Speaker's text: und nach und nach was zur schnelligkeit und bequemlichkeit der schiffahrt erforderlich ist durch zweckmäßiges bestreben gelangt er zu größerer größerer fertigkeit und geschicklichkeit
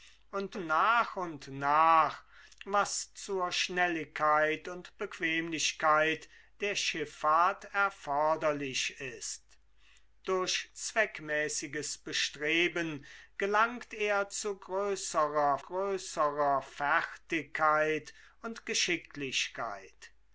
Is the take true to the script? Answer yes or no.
yes